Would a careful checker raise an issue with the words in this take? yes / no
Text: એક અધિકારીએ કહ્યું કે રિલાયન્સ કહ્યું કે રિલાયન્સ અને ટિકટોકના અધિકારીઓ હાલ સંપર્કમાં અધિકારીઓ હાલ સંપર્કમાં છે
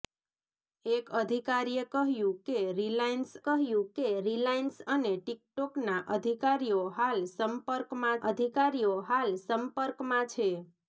no